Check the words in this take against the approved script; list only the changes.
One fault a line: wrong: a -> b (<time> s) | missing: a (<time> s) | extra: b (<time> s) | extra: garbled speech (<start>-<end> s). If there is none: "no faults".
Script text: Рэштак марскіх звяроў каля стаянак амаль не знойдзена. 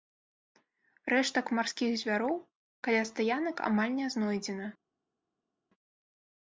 no faults